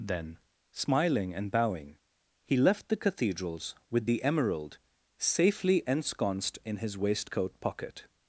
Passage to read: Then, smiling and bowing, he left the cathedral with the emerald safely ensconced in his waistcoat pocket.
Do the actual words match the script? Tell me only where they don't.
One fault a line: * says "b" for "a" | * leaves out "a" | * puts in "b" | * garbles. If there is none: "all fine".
* says "cathedrals" for "cathedral"